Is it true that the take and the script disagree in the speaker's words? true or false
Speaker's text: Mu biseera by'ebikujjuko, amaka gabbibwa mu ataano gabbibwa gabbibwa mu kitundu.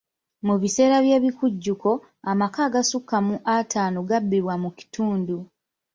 true